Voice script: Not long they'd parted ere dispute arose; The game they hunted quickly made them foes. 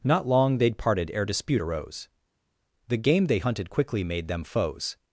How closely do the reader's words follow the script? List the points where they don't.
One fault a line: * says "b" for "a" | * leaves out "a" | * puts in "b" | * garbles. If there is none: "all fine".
all fine